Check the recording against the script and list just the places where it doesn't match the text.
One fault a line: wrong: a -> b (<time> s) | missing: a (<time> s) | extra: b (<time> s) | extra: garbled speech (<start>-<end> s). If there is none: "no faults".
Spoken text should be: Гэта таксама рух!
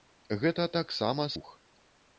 no faults